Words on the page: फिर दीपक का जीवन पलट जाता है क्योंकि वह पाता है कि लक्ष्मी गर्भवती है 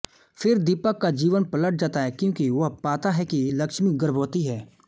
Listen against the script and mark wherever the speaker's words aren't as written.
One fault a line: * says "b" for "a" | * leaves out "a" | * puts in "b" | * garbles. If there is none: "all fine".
all fine